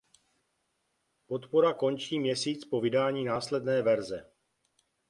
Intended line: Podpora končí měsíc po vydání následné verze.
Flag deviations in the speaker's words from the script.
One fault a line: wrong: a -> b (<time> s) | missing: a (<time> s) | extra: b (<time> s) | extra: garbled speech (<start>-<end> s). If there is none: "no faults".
no faults